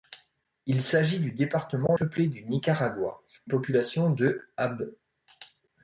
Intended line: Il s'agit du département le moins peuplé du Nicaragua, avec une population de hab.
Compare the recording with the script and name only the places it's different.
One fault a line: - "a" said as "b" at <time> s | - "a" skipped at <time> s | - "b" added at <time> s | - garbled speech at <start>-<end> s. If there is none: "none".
- "le moins" skipped at 1.9 s
- "avec une" skipped at 3.2 s